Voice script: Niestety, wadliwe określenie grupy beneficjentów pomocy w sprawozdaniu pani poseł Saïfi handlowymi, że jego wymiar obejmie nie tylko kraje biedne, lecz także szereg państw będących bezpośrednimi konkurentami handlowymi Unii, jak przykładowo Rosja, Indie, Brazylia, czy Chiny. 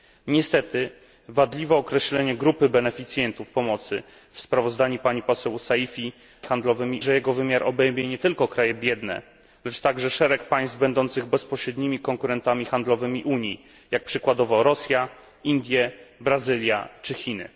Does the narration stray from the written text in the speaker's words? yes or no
no